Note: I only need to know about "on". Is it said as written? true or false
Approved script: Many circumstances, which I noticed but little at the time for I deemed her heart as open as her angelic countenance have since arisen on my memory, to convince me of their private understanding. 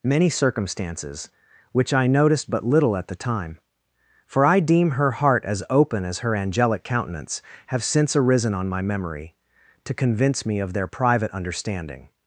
true